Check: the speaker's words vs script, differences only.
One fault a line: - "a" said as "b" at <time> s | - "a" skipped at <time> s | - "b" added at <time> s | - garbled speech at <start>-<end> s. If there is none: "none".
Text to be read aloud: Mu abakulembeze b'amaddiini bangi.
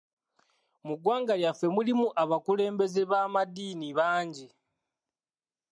- "ggwanga lyaffe mulimu" added at 1.0 s